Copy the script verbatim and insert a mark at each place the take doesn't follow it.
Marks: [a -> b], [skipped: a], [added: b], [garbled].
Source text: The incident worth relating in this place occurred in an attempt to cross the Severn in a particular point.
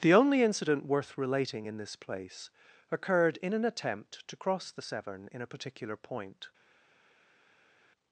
The [added: only] incident worth relating in this place occurred in an attempt to cross the Severn in a particular point.